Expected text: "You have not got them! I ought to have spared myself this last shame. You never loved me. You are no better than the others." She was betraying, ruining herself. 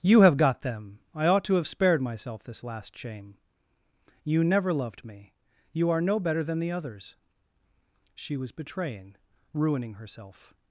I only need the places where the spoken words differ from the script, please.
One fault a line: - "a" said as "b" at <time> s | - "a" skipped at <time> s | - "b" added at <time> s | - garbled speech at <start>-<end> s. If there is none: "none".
- "not" skipped at 0.3 s